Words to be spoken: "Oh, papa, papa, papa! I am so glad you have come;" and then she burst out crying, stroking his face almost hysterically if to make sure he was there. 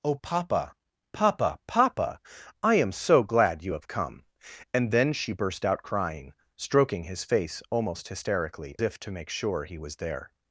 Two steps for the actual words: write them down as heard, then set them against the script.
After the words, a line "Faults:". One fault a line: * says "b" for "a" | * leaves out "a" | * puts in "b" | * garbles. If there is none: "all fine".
"Oh, papa, papa, papa! I am so glad you have come;" and then she burst out crying, stroking his face almost hysterically if to make sure he was there.
Faults:
all fine